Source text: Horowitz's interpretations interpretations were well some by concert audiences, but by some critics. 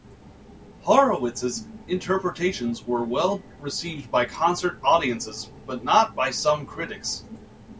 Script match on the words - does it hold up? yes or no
no